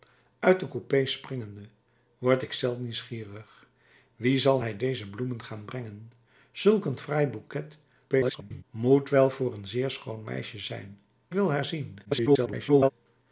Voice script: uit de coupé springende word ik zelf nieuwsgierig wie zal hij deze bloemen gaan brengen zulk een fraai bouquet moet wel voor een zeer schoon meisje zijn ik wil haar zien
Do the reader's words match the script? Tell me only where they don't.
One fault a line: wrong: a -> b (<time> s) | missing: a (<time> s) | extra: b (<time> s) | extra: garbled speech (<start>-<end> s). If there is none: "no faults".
extra: garbled speech (8.1-8.6 s)
missing: ik (11.0 s)
extra: garbled speech (12.0-12.9 s)